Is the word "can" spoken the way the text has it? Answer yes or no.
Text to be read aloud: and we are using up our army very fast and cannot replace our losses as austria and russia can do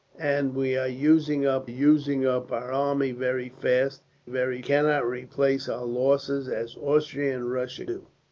no